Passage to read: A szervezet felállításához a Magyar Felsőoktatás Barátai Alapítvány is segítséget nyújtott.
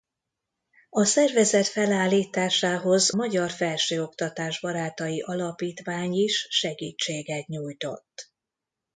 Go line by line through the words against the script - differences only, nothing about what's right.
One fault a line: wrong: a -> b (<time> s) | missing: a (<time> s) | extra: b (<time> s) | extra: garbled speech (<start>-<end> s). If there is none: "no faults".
missing: a (3.1 s)